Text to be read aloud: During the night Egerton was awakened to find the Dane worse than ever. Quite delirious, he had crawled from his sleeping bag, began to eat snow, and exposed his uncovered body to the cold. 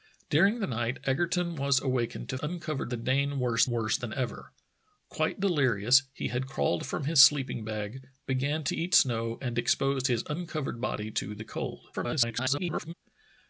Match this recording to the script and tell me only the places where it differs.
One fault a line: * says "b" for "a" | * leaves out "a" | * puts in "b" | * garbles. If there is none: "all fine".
* says "uncovered" for "find"
* puts in "worse"
* garbles